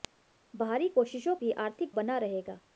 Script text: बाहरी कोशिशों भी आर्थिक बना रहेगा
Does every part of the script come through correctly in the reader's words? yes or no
yes